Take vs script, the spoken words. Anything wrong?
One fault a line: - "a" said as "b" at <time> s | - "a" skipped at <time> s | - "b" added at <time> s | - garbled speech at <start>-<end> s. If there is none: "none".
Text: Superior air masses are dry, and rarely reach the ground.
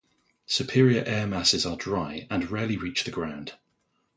none